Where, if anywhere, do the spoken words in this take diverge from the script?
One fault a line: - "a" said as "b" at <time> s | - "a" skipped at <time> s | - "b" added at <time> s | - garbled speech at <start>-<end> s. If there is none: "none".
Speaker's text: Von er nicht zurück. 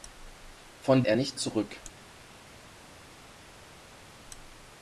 none